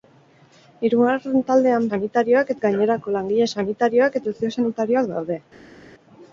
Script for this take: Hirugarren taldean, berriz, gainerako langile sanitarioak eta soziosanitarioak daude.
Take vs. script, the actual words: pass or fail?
fail